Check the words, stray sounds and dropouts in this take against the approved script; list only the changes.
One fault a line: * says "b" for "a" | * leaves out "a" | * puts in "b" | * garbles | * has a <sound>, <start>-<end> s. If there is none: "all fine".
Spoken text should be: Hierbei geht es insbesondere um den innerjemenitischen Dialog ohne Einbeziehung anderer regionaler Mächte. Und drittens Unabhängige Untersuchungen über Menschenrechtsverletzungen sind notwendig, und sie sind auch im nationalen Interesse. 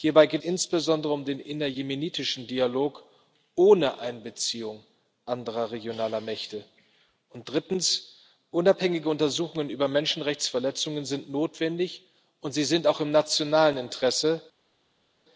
* leaves out "es"